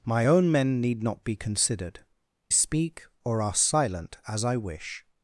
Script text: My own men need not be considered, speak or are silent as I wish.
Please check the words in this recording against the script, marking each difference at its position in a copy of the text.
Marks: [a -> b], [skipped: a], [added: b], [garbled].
My own men need not be considered, speak or are silent as I wish.